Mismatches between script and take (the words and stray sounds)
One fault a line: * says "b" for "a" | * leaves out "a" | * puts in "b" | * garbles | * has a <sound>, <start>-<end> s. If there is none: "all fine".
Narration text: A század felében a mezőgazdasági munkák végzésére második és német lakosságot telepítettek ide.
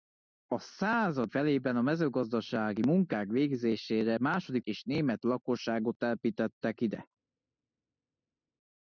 all fine